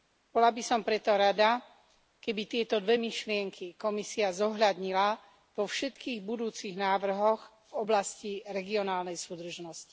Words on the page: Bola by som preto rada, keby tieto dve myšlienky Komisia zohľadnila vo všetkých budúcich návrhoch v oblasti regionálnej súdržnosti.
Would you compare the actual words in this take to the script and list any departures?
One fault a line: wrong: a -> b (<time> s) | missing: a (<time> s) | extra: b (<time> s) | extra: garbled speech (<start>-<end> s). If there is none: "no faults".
no faults